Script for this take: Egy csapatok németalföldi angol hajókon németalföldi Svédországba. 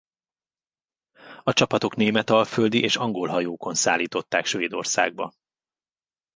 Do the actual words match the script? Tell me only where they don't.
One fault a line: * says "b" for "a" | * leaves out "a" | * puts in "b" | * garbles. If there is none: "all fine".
* says "A" for "Egy"
* puts in "és"
* says "szállították" for "németalföldi"